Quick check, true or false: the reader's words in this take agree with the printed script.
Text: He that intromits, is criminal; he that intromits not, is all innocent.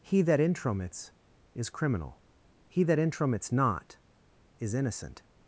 false